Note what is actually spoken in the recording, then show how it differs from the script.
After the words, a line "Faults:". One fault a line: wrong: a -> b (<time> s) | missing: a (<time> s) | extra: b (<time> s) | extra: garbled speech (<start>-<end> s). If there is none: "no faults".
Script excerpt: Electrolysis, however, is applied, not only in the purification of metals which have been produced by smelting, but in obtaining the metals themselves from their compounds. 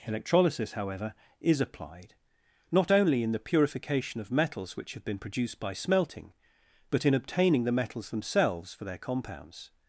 Electrolysis, however, is applied, not only in the purification of metals which have been produced by smelting, but in obtaining the metals themselves for their compounds.
Faults:
wrong: from -> for (8.7 s)